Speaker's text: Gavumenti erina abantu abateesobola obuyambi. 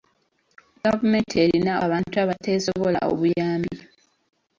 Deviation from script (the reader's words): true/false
false